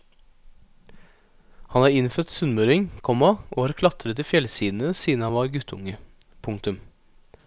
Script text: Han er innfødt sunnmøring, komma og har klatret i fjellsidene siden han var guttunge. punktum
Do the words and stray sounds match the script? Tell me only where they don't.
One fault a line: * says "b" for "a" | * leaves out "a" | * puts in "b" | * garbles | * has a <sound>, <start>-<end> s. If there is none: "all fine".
all fine